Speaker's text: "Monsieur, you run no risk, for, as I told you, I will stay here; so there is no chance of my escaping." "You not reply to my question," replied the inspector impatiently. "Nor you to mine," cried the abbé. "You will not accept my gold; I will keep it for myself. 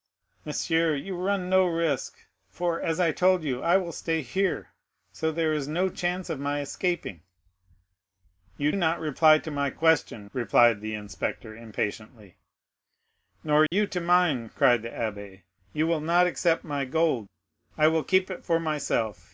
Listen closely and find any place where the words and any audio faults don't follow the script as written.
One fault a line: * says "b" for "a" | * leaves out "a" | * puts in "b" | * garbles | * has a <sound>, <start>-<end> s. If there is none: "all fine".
* has a dropout, 13.7-13.7 s